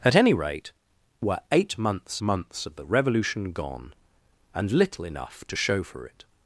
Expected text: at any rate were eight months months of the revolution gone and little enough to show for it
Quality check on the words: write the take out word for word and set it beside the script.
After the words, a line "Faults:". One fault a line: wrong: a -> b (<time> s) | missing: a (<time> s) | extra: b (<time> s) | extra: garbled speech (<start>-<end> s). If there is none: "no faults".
at any rate were eight months months of the revolution gone and little enough to show for it
Faults:
no faults